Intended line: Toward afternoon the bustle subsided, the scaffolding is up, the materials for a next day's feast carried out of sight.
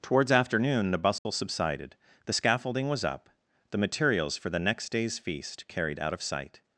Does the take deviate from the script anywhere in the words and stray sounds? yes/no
yes